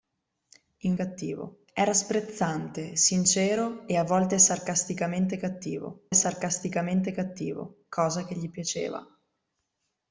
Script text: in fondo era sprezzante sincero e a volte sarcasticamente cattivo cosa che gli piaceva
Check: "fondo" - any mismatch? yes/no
yes